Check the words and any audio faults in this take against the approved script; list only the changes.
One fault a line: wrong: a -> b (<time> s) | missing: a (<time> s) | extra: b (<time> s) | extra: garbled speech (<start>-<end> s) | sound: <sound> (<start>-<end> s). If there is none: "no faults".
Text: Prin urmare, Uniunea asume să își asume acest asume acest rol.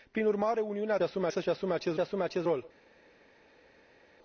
no faults